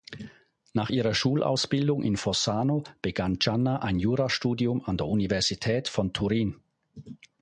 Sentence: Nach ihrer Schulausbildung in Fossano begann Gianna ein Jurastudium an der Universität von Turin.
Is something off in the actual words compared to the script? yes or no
no